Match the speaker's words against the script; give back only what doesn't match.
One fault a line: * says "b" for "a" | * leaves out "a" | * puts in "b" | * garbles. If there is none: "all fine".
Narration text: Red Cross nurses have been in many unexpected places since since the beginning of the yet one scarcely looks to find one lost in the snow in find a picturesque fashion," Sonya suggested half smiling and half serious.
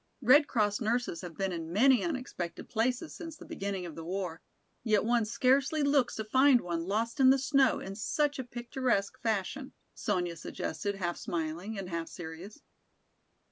* leaves out "since"
* puts in "war"
* says "such" for "find"